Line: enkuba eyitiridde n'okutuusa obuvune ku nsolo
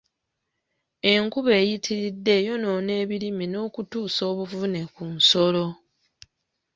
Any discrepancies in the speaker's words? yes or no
yes